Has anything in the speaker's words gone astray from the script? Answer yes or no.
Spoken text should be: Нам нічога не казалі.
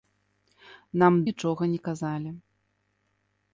no